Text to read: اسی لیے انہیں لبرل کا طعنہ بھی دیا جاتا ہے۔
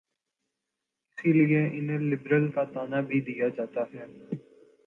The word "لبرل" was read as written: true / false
true